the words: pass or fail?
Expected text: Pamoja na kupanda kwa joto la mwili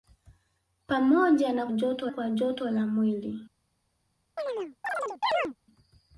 fail